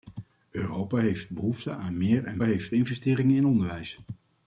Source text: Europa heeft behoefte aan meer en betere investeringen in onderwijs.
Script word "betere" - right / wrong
wrong